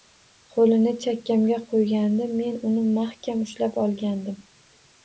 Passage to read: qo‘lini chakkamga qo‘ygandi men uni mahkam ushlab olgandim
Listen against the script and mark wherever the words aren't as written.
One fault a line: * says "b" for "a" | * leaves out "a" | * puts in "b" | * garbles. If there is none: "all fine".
all fine